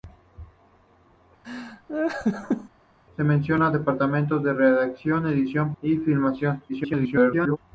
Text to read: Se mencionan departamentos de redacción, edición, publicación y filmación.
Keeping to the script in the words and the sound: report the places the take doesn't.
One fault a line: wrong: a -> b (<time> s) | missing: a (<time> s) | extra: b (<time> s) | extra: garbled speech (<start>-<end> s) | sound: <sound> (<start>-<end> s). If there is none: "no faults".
sound: laugh (1.4-2.7 s)
missing: publicación (5.7 s)
extra: garbled speech (6.7-7.6 s)